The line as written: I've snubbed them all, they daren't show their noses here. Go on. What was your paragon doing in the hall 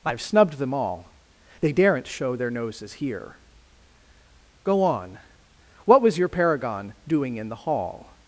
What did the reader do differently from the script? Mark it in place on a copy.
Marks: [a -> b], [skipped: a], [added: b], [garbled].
I've snubbed them all, they daren't show their noses here. Go on. What was your paragon doing in the hall